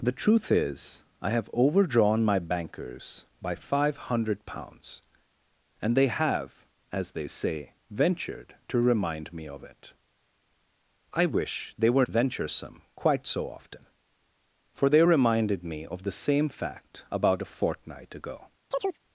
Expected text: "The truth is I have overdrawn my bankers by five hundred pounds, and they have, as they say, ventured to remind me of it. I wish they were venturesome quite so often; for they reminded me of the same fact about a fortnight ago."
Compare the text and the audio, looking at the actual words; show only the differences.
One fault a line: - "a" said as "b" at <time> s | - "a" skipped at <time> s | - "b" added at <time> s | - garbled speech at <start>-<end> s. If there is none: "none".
none